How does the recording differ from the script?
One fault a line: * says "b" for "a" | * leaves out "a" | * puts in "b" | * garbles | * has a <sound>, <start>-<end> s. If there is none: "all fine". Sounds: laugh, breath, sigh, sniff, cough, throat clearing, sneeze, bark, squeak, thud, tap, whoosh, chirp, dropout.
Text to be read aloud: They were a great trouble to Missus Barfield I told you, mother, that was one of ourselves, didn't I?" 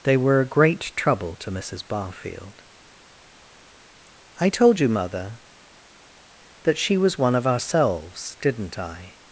* puts in "she"